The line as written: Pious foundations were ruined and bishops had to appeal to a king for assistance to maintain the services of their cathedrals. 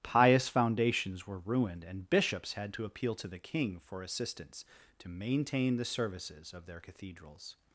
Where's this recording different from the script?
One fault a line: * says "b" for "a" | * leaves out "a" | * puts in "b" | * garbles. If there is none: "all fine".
* says "the" for "a"